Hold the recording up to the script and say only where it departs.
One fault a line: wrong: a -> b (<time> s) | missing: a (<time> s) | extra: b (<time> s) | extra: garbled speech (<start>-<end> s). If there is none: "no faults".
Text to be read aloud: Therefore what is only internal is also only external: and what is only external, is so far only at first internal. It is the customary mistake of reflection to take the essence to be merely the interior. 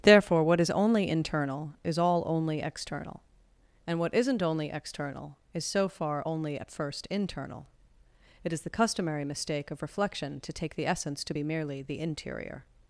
wrong: also -> all (2.0 s)
wrong: is -> isn't (4.1 s)